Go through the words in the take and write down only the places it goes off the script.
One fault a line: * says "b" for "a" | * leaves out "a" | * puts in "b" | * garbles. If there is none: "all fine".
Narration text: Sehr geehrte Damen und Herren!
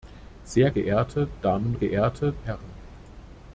* says "geehrte" for "und"